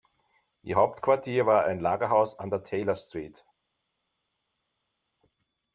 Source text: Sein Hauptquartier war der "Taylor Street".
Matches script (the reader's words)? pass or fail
fail